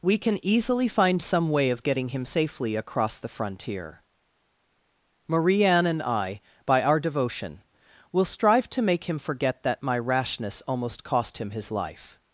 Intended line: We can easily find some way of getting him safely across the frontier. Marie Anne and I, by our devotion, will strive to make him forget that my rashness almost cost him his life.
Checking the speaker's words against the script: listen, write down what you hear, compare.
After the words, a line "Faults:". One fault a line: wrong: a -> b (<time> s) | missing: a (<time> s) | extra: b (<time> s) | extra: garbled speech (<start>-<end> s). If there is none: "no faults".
We can easily find some way of getting him safely across the frontier. Marie Anne and I, by our devotion, will strive to make him forget that my rashness almost cost him his life.
Faults:
no faults